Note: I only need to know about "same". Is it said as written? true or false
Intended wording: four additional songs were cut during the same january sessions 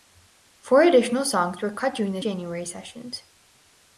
false